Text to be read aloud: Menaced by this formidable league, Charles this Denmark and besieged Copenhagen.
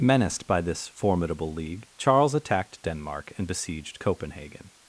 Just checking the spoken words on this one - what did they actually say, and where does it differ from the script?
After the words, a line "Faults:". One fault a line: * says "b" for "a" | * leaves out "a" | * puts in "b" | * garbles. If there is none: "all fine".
Menaced by this formidable league, Charles attacked Denmark and besieged Copenhagen.
Faults:
* says "attacked" for "this"